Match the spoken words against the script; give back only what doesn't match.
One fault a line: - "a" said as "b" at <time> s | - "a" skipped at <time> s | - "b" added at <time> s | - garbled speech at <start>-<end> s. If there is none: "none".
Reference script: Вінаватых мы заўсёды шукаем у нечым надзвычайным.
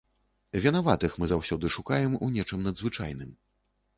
none